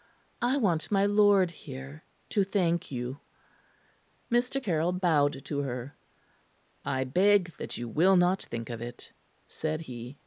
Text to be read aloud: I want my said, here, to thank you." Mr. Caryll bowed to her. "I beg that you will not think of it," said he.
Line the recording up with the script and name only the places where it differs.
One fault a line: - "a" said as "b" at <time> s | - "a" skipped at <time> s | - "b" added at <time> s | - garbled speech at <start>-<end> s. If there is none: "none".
- "said" said as "lord" at 1.1 s